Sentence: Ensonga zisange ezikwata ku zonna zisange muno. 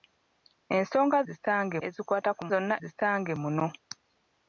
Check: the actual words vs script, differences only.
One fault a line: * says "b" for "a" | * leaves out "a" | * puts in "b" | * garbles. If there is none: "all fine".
all fine